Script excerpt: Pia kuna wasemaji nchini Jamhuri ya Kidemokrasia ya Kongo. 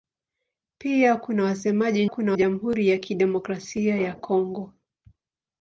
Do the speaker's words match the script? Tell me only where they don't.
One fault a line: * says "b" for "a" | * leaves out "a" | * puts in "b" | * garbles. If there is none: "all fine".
* says "kuna" for "nchini"